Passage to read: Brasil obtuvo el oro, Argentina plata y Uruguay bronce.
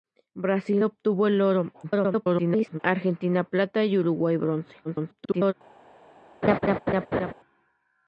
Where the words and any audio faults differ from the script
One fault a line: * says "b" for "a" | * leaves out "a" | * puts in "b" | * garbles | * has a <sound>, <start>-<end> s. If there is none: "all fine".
* garbles
* garbles
* has a laugh, 6.4-7.3 s